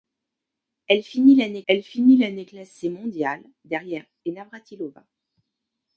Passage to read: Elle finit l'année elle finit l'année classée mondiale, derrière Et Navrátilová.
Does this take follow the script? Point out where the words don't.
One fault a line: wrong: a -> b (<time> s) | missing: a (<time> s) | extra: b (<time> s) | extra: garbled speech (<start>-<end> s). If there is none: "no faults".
no faults